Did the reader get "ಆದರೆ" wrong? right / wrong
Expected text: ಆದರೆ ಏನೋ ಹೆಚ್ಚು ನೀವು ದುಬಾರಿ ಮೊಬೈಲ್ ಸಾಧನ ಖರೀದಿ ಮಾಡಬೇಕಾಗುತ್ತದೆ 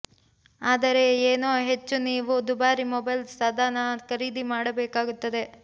right